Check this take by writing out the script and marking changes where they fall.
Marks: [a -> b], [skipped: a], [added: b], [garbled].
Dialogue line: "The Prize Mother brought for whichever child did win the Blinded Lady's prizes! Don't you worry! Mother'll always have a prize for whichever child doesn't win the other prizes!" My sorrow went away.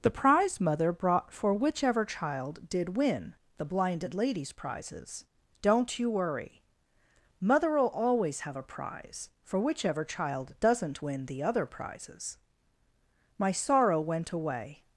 "The Prize Mother brought for whichever child did win the Blinded Lady's prizes! Don't you worry! Mother'll always have a prize for whichever child doesn't win the other prizes!" My sorrow went away.